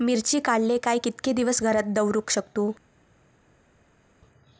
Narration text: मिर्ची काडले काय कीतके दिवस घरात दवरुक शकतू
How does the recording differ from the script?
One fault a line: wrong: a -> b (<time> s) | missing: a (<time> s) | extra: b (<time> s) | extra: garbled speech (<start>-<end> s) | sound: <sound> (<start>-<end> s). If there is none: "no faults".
no faults